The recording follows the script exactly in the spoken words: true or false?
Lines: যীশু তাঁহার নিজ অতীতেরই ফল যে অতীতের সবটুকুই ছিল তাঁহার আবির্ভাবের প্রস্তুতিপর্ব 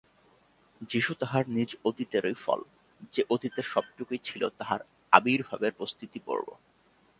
true